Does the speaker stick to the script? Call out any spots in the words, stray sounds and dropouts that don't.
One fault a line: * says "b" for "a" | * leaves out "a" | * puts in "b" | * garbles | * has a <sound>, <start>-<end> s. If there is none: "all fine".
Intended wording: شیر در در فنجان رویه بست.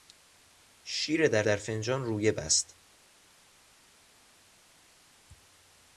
all fine